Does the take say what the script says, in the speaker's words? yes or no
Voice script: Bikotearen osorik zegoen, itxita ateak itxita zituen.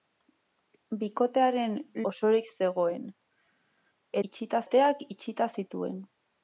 yes